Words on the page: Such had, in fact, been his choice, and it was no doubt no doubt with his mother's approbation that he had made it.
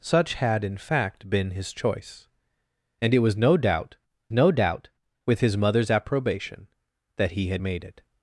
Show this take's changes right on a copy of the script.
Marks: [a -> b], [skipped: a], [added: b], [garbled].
Such had, in fact, been his choice, and it was no doubt no doubt with his mother's approbation that he had made it.